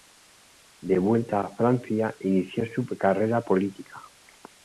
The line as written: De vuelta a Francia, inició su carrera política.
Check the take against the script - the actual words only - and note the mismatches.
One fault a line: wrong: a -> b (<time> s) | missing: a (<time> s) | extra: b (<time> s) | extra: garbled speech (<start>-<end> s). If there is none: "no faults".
no faults